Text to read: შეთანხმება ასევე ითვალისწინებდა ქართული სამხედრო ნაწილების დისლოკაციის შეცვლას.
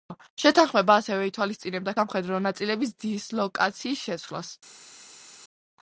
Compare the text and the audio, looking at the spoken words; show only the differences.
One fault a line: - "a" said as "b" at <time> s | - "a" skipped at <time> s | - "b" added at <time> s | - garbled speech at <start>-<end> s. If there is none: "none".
- "ქართული" skipped at 1.9 s